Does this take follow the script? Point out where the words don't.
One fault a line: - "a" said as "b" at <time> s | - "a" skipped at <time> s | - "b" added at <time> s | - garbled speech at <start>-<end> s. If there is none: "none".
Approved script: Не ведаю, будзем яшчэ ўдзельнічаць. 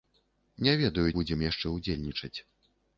none